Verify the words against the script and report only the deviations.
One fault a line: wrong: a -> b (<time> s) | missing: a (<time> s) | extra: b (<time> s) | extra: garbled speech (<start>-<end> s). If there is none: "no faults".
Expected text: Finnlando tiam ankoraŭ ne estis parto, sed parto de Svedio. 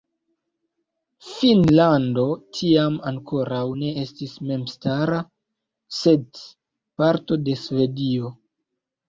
wrong: parto -> memstara (4.5 s)